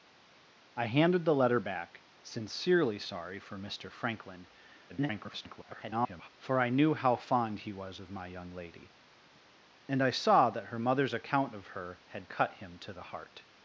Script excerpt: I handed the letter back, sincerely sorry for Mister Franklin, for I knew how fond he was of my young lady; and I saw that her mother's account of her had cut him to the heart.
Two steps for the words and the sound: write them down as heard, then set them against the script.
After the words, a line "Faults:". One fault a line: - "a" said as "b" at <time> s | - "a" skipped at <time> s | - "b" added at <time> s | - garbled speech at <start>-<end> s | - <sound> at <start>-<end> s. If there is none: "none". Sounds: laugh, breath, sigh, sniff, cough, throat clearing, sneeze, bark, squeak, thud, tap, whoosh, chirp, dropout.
I handed the letter back, sincerely sorry for Mister Franklin, [garbled] for I knew how fond he was of my young lady; and I saw that her mother's account of her had cut him to the heart.
Faults:
- garbled speech at 4.9-6.3 s